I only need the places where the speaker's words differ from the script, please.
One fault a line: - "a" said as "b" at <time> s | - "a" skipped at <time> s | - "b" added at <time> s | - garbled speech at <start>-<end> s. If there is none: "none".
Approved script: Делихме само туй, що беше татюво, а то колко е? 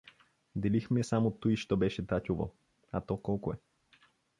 none